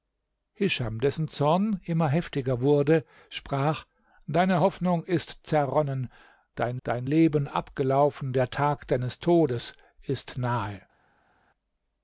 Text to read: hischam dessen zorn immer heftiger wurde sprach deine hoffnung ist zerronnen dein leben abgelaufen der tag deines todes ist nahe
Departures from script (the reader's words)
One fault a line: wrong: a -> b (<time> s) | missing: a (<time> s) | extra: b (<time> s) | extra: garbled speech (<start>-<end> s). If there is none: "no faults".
extra: dein (6.8 s)